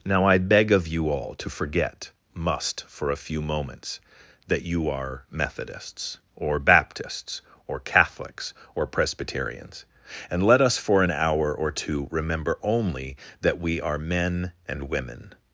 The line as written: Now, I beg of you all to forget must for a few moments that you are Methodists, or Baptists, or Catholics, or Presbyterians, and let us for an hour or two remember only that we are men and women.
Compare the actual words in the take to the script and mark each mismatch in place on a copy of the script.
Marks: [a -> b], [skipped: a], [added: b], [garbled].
Now, I beg of you all to forget must for a few moments that you are Methodists, or Baptists, or Catholics, or Presbyterians, and let us for an hour or two remember only that we are men and women.